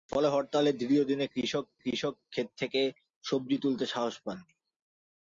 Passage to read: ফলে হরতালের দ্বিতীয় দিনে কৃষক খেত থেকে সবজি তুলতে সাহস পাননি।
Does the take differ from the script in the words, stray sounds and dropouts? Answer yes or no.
yes